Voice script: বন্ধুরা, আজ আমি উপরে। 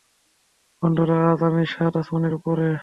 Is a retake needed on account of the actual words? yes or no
yes